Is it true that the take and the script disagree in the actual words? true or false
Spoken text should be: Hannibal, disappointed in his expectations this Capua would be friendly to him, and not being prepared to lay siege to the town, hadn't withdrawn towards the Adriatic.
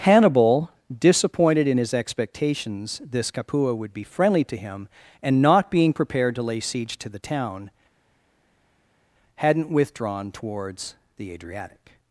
false